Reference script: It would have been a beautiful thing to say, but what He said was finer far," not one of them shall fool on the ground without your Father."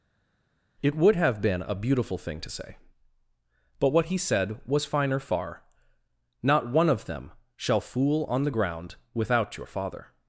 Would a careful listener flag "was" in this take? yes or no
no